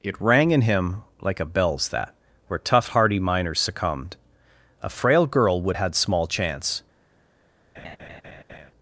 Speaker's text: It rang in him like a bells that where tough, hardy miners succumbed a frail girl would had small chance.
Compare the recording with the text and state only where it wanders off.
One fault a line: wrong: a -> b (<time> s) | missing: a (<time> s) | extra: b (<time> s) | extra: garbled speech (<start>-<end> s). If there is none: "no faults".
no faults